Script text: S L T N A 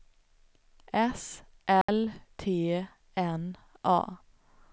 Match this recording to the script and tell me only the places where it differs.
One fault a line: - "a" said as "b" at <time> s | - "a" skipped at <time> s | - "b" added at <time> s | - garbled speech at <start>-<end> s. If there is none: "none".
none